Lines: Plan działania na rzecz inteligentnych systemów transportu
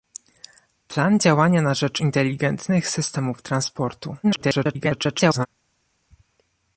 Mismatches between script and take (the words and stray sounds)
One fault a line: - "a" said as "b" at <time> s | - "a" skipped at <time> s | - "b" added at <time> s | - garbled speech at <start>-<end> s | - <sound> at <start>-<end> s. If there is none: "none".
- garbled speech at 4.2-5.5 s